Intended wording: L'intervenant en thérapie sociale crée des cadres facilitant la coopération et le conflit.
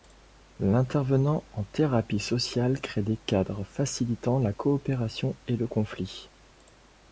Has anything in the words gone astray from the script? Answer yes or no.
no